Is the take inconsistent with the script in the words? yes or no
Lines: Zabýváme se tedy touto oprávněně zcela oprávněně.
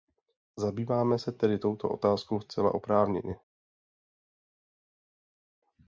yes